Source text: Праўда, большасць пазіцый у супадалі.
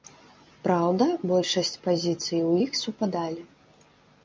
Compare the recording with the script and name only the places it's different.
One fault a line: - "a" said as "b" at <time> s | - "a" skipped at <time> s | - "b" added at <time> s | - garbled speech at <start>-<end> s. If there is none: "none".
- "іх" added at 2.7 s